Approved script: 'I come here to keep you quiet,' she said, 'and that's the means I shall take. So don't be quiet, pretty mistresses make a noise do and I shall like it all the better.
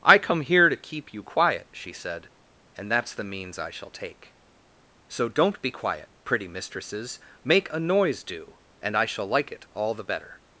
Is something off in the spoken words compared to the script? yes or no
no